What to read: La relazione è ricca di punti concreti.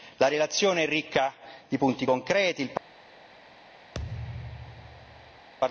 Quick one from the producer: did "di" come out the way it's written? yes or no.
yes